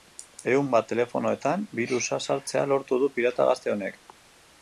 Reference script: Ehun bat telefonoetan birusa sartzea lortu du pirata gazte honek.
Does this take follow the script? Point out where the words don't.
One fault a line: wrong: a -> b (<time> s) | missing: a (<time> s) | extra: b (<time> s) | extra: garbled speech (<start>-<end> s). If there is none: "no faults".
no faults